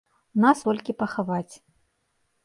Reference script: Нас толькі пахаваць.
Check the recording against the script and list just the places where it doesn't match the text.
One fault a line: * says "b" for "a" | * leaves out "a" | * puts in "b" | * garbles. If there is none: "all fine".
all fine